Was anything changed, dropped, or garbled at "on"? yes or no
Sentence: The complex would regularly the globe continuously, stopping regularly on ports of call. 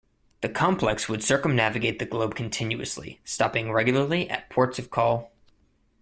yes